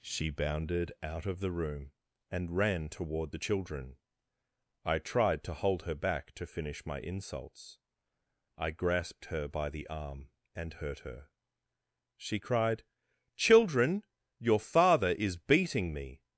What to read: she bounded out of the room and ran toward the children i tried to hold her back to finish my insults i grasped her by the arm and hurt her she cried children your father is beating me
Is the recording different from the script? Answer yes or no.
no